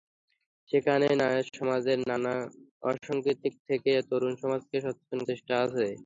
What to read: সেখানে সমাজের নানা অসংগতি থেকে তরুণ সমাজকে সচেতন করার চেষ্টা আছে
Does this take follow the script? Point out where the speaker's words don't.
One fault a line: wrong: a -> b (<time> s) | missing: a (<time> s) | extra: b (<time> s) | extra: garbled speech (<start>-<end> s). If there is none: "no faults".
missing: করার (5.2 s)